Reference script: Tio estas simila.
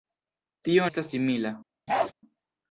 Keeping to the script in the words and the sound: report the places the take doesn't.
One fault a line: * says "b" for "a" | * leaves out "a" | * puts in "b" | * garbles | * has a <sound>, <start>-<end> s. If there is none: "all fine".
* has a bark, 1.9-2.1 s